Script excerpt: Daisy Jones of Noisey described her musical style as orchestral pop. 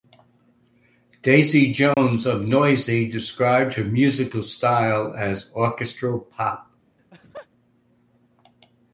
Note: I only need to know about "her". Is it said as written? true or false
true